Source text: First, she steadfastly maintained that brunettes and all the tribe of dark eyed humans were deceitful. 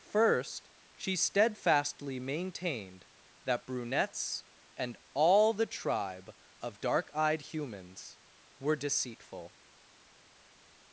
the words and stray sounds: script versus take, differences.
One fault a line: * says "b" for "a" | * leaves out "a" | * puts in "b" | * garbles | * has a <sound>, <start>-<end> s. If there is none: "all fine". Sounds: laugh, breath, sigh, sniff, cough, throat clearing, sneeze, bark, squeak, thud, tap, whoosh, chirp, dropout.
all fine